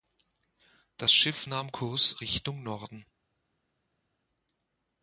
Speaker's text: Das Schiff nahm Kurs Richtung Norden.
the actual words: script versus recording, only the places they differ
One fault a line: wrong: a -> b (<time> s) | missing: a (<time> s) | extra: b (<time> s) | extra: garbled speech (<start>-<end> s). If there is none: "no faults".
no faults